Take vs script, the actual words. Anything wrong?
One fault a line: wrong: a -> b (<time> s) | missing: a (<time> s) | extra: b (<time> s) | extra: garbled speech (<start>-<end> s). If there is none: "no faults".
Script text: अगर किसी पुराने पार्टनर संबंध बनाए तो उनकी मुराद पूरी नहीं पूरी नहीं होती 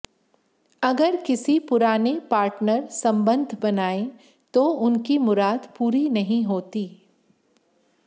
missing: पूरी नहीं (6.4 s)